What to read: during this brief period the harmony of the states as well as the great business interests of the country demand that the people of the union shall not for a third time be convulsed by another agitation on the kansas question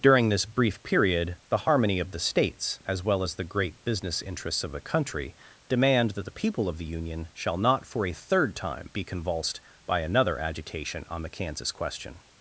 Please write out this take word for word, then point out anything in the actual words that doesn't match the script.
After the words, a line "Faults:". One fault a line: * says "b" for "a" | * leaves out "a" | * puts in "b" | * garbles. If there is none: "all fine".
during this brief period the harmony of the states as well as the great business interests of the country demand that the people of the union shall not for a third time be convulsed by another agitation on the kansas question
Faults:
all fine